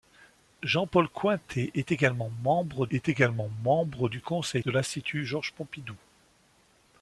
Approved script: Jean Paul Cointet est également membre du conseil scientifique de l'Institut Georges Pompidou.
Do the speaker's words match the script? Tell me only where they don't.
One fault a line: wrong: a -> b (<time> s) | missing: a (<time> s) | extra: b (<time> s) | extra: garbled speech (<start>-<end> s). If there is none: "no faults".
extra: est également membre (2.9 s)
missing: scientifique (4.6 s)